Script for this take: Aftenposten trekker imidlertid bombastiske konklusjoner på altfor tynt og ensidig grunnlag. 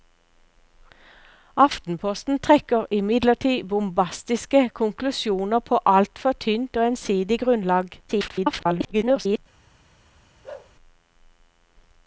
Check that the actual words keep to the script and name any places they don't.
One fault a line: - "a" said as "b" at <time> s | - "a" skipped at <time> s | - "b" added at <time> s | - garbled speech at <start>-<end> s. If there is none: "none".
- garbled speech at 8.1-9.4 s